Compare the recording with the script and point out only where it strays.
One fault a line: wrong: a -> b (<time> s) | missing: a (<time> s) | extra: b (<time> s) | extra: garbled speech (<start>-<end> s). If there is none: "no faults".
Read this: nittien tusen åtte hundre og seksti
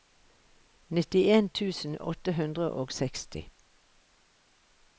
no faults